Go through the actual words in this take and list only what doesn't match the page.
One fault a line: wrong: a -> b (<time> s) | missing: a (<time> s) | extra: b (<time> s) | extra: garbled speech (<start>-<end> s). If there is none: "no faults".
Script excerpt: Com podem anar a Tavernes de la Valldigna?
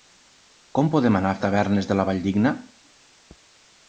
no faults